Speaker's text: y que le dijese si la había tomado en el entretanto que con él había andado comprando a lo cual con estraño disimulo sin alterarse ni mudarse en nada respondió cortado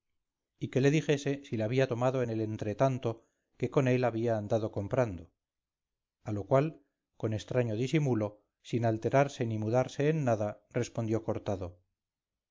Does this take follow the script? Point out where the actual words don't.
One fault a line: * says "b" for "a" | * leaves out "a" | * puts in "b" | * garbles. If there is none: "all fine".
all fine